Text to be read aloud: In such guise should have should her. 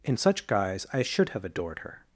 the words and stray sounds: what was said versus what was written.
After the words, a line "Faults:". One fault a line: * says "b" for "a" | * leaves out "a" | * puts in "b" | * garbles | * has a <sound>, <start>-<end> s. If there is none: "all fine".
In such guise I should have adored her.
Faults:
* puts in "I"
* says "adored" for "should"